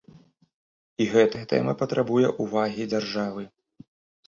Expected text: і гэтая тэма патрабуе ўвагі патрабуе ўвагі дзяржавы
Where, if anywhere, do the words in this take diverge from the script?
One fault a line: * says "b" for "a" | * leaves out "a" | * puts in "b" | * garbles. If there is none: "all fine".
* leaves out "патрабуе ўвагі"